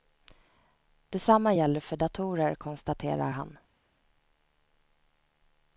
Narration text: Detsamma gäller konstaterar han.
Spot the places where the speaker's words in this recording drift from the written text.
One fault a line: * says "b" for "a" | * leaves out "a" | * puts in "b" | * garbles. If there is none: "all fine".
* puts in "för datorer"